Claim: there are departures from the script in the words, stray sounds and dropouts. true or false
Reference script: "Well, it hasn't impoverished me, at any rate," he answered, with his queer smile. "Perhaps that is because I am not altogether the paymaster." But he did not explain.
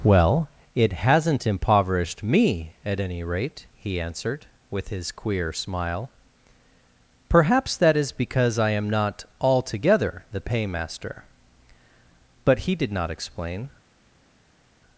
false